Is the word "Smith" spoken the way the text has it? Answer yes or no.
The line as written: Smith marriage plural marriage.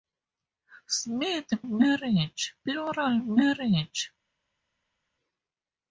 yes